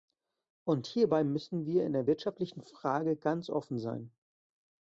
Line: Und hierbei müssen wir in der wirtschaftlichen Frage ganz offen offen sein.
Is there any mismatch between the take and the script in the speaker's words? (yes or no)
yes